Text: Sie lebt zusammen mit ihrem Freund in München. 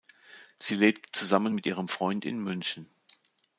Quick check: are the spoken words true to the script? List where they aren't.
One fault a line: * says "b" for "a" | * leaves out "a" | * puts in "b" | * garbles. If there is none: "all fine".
all fine